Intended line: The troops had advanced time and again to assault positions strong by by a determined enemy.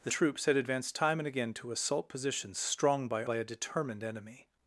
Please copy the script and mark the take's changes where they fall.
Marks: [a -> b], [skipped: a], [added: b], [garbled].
The troops had advanced time and again to assault positions strong by by a determined enemy.